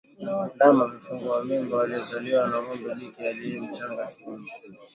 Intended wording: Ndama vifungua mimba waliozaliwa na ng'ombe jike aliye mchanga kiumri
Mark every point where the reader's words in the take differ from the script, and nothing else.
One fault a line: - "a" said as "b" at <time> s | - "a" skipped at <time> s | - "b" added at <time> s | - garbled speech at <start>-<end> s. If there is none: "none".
none